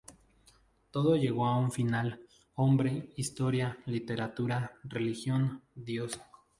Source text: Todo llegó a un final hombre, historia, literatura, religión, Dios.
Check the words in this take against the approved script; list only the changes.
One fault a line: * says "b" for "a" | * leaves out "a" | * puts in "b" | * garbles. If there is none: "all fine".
all fine